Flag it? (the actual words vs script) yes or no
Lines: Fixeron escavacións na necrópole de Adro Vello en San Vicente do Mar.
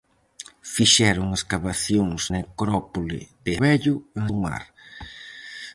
yes